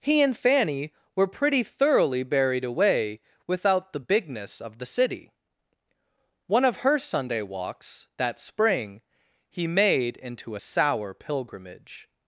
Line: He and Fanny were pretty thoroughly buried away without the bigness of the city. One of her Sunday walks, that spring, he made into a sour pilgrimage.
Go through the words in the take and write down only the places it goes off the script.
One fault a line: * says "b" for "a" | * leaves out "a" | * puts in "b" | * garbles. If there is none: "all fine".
all fine